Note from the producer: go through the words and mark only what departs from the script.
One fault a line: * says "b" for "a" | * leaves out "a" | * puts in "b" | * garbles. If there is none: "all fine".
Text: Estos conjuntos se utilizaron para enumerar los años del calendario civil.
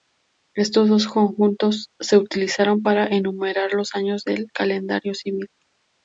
* puts in "dos"